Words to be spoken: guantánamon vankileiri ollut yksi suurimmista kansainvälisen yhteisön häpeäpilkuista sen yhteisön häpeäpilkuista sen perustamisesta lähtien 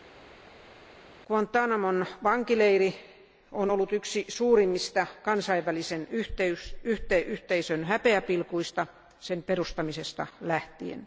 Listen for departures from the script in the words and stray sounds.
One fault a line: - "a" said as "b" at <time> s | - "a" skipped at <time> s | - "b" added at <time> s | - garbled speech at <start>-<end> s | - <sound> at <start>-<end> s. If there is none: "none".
- "on" added at 3.5 s
- "yhteisön häpeäpilkuista sen" skipped at 9.4 s